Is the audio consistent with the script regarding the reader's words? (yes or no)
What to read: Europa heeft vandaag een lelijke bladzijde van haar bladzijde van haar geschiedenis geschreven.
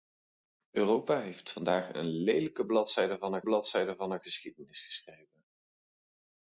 yes